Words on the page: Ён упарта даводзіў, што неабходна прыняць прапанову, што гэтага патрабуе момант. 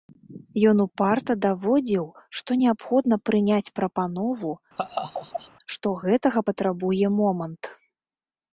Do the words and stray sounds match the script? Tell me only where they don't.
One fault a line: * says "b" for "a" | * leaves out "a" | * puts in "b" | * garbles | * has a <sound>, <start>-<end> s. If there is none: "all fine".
* has a laugh, 4.8-5.5 s